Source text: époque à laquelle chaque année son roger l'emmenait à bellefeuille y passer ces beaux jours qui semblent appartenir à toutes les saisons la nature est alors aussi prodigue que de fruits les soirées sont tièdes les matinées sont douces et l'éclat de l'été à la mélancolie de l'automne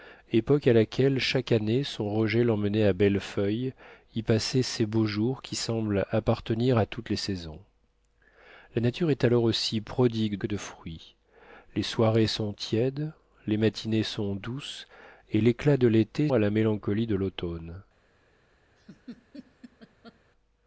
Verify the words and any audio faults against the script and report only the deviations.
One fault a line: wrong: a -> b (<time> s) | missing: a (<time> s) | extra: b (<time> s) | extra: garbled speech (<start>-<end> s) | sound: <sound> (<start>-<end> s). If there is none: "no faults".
sound: laugh (18.8-20.2 s)